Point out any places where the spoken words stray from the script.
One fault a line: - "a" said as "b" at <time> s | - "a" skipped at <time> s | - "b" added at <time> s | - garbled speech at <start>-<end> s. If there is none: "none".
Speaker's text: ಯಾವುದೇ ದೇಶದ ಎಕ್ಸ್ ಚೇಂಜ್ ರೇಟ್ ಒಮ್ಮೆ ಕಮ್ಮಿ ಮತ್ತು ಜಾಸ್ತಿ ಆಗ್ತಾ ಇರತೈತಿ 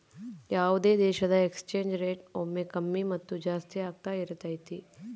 none